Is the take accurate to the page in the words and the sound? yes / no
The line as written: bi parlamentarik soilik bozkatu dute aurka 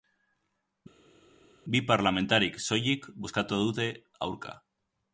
yes